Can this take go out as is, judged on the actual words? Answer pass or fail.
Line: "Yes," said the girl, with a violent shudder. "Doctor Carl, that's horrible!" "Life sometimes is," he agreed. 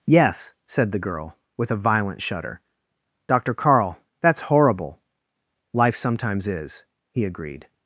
pass